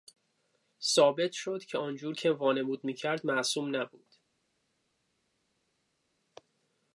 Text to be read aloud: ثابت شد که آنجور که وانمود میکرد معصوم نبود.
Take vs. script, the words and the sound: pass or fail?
pass